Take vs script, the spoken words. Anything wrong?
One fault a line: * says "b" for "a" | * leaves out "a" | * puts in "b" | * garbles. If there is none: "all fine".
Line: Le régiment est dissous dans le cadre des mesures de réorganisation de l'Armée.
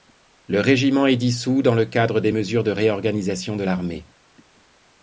all fine